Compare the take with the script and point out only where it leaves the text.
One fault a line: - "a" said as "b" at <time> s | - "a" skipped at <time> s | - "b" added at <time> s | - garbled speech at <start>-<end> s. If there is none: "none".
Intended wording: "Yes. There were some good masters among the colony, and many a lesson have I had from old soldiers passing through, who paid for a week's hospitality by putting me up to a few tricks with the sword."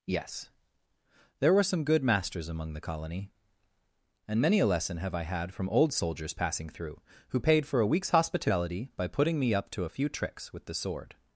none